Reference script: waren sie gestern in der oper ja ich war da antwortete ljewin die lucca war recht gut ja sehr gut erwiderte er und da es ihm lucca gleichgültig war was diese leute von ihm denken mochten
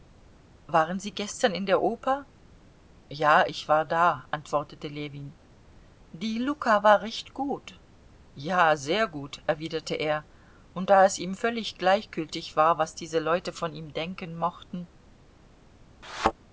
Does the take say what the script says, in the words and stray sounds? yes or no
no